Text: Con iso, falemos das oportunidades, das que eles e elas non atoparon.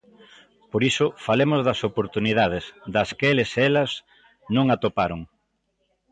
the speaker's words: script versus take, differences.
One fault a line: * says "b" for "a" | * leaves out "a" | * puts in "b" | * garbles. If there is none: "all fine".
* says "Por" for "Con"